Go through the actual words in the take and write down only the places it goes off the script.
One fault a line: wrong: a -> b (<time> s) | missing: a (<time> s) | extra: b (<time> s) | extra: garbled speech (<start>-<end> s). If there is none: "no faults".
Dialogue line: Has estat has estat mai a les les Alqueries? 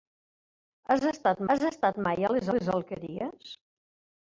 no faults